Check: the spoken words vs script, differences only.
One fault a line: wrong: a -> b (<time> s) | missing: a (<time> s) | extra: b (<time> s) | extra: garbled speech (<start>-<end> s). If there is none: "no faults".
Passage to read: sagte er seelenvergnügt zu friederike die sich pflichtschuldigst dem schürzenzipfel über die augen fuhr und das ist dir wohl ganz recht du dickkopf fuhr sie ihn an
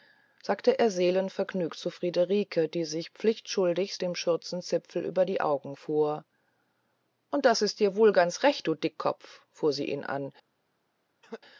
no faults